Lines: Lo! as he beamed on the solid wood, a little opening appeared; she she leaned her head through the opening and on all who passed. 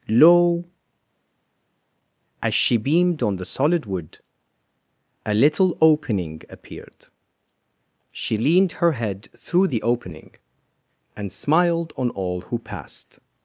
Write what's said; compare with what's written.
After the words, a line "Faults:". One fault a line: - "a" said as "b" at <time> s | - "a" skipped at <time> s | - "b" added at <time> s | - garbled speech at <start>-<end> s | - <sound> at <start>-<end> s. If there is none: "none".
Lo! as she beamed on the solid wood, a little opening appeared; she leaned her head through the opening and smiled on all who passed.
Faults:
- "he" said as "she" at 2.5 s
- "she" skipped at 8.3 s
- "smiled" added at 11.3 s